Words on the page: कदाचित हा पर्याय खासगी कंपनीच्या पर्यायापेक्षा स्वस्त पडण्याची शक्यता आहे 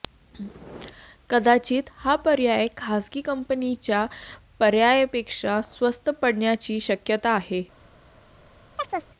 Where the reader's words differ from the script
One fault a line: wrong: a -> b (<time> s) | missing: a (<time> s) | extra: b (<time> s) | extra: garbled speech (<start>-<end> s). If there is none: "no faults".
no faults